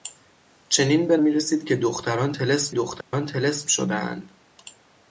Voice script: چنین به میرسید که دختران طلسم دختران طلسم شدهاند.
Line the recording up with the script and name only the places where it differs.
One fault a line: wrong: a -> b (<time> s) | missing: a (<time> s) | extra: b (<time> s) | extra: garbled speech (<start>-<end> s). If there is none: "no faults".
no faults